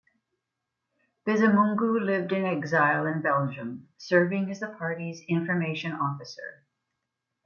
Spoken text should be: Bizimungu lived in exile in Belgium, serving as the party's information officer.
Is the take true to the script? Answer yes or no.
yes